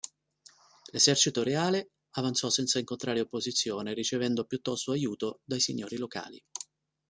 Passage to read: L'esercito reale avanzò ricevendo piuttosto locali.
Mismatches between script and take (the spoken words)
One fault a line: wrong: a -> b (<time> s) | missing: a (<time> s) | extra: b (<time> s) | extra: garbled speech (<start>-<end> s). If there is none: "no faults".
extra: senza incontrare opposizione (2.5 s)
extra: aiuto dai signori (4.9 s)